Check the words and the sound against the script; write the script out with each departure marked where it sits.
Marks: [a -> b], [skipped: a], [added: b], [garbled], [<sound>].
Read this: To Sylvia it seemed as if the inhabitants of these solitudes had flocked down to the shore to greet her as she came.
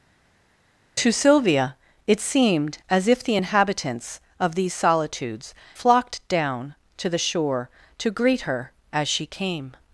To Sylvia it seemed as if the inhabitants of these solitudes [skipped: had] flocked down to the shore to greet her as she came.